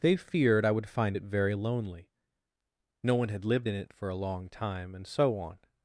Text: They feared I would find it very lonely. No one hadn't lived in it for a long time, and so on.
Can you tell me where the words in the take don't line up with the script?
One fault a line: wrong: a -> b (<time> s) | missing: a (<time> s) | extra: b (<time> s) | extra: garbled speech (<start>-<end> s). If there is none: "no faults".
wrong: hadn't -> had (3.3 s)